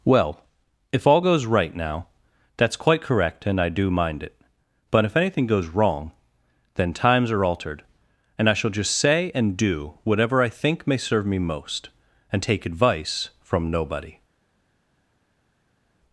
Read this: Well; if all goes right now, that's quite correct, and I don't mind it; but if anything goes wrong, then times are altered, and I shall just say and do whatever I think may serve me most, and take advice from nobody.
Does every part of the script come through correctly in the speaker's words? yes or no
no